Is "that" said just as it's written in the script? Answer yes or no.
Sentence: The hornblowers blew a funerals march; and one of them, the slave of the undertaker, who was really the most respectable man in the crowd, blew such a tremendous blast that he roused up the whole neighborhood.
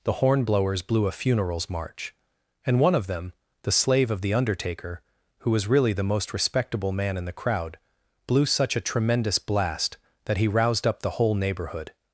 yes